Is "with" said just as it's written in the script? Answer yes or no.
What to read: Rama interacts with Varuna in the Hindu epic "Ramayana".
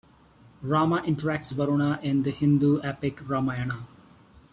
no